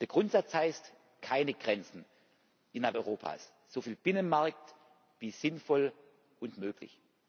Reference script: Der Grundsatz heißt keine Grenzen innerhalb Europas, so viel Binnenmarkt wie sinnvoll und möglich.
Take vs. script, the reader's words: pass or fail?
pass